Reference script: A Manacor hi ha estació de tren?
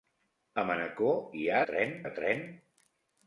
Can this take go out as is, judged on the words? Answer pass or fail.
fail